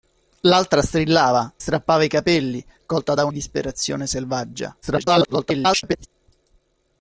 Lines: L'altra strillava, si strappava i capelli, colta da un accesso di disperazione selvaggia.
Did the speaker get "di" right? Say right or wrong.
wrong